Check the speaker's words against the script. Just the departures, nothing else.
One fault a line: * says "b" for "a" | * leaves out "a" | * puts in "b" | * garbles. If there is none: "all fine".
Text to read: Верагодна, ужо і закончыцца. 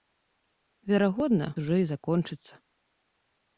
all fine